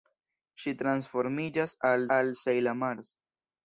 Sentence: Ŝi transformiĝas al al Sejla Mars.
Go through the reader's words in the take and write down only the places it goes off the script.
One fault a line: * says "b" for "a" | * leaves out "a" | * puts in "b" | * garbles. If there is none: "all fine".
all fine